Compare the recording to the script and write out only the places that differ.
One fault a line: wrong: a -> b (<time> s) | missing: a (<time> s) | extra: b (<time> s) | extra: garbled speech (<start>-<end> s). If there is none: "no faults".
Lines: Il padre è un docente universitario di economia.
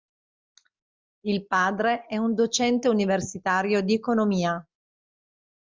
no faults